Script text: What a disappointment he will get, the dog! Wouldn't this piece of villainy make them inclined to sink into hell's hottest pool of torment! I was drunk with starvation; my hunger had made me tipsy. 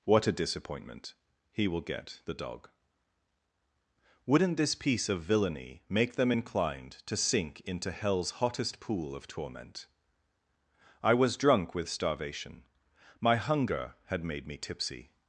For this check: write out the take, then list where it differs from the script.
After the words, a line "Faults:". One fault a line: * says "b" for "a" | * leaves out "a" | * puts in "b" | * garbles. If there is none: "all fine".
What a disappointment he will get, the dog! Wouldn't this piece of villainy make them inclined to sink into hell's hottest pool of torment! I was drunk with starvation; my hunger had made me tipsy.
Faults:
all fine